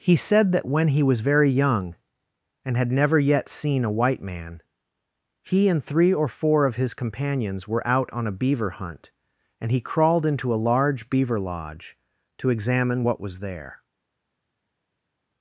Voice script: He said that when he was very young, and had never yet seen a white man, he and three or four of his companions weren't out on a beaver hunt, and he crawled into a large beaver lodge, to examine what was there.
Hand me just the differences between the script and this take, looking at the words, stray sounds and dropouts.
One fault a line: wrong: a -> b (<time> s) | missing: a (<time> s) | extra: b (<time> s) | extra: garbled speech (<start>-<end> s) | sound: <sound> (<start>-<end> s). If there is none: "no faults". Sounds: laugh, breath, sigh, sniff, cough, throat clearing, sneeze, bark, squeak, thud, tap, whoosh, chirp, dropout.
wrong: weren't -> were (7.7 s)